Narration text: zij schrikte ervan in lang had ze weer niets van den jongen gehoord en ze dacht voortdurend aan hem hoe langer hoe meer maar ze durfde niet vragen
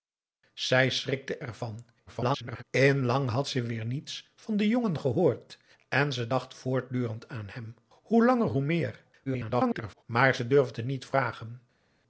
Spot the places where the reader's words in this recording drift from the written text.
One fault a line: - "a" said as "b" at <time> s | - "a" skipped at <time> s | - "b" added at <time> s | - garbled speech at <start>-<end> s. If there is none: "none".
- garbled speech at 2.1-2.6 s
- garbled speech at 9.3-10.0 s